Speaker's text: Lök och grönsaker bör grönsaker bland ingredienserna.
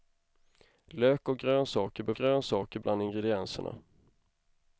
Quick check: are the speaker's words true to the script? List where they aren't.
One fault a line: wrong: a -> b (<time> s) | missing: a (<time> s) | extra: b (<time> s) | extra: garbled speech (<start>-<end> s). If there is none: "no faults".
no faults